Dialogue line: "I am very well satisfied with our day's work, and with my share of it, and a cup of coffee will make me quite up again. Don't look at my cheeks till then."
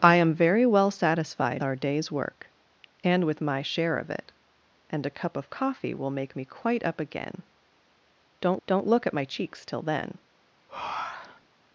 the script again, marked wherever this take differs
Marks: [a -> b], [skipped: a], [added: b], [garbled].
"I am very well satisfied [skipped: with] our day's work, and with my share of it, and a cup of coffee will make me quite up again. Don't [added: don't] look at my cheeks till then."